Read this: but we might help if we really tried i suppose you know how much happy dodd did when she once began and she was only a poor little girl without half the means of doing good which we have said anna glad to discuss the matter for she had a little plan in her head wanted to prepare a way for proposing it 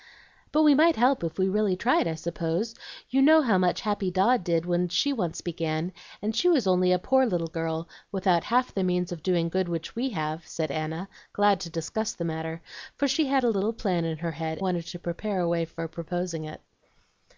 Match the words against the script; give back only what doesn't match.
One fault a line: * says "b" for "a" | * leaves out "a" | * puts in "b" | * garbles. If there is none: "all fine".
all fine